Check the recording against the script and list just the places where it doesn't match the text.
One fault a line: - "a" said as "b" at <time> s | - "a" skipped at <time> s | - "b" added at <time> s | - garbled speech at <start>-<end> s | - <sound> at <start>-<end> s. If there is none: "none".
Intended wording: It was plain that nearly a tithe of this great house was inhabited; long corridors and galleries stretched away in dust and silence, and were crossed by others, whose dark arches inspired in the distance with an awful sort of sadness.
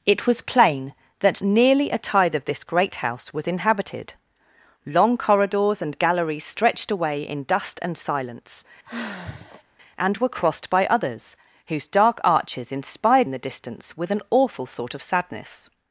- sigh at 8.8-9.6 s